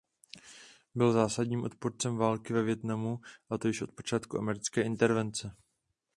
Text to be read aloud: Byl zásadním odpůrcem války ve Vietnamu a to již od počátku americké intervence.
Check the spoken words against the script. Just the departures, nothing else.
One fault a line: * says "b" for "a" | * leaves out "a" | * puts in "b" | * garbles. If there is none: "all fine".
all fine